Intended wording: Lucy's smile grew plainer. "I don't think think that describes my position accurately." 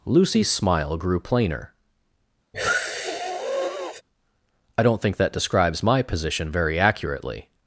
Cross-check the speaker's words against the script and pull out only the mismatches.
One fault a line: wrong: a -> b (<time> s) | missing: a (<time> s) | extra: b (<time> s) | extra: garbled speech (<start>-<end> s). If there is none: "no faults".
missing: think (5.2 s)
extra: very (6.5 s)